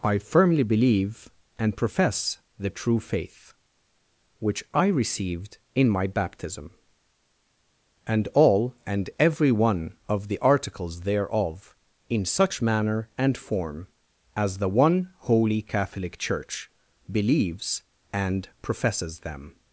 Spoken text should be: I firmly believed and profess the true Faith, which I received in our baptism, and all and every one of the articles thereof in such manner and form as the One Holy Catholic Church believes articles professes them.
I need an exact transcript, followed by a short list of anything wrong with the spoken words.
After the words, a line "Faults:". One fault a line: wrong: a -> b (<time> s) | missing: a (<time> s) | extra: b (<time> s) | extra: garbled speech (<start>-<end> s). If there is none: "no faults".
I firmly believe and profess the true Faith, which I received in my baptism, and all and every one of the articles thereof in such manner and form as the One Holy Catholic Church believes and professes them.
Faults:
wrong: believed -> believe (0.6 s)
wrong: our -> my (5.9 s)
wrong: articles -> and (18.1 s)